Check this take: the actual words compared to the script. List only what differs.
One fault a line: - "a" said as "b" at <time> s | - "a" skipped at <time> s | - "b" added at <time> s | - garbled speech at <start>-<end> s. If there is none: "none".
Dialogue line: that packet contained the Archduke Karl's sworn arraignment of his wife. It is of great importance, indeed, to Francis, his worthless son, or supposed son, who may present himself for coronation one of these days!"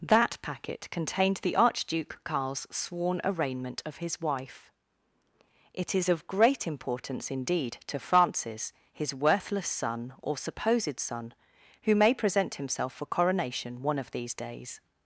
none